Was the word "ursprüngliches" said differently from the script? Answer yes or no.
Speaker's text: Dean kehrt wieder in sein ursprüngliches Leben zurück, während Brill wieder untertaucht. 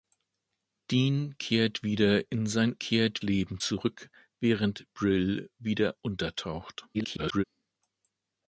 yes